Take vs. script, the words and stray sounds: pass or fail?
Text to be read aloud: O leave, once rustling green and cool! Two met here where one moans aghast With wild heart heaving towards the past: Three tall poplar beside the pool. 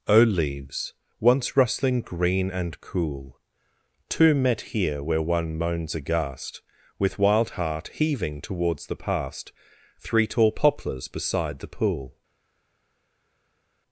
fail